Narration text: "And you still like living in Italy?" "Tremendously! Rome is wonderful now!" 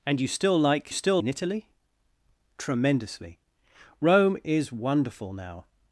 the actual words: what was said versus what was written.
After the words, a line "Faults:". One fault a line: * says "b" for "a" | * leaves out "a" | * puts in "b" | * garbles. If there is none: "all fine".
"And you still like still in Italy?" "Tremendously! Rome is wonderful now!"
Faults:
* says "still" for "living"